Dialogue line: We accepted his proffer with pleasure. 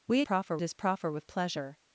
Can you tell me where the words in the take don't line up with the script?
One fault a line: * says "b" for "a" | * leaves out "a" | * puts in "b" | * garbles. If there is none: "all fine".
* says "proffer" for "accepted"